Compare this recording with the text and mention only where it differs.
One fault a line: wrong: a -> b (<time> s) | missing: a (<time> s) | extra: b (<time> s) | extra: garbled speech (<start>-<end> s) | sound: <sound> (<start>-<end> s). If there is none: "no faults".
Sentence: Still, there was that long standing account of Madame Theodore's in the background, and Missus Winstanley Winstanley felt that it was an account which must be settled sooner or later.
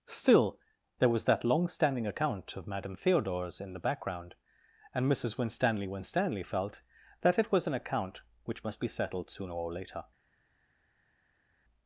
no faults